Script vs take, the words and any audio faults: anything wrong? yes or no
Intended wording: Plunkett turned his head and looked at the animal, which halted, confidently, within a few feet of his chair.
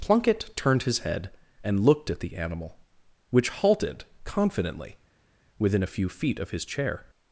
no